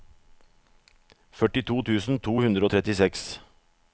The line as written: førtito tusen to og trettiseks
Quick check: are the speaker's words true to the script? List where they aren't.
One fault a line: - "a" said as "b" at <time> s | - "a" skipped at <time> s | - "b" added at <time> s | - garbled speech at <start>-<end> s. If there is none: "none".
- "hundre" added at 2.4 s